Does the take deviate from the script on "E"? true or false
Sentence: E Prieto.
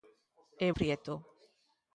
false